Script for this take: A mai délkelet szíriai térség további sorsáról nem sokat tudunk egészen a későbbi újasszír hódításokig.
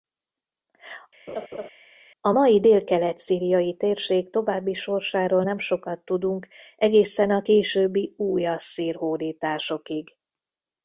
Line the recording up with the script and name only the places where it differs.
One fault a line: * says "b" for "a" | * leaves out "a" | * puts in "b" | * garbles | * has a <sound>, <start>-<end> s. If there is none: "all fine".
* has a laugh, 1.3-1.7 s